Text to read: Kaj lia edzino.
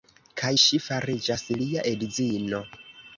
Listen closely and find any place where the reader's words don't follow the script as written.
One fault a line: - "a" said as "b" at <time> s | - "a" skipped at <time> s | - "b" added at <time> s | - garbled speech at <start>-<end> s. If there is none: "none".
- "ŝi fariĝas" added at 0.6 s